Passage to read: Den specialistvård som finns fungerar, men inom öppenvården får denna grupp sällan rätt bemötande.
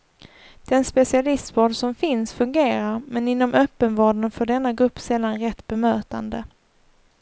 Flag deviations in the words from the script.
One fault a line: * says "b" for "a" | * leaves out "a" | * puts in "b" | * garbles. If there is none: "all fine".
all fine